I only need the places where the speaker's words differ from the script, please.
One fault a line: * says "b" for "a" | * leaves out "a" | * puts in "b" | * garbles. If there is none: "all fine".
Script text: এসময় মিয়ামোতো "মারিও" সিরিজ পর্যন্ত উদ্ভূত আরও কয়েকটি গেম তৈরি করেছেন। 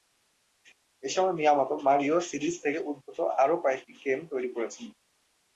* says "থেকে" for "পর্যন্ত"